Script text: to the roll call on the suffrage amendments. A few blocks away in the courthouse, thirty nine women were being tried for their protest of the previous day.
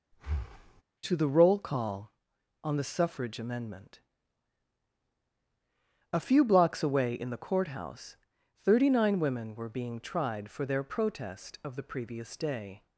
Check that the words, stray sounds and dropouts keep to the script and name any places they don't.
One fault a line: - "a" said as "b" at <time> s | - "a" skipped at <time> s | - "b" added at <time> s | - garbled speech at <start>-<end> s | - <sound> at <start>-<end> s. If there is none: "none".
- breath at 0.1-0.8 s
- "amendments" said as "amendment" at 3.4 s